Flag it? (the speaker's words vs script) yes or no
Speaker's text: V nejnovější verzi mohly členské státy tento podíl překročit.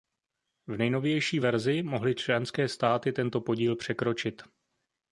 no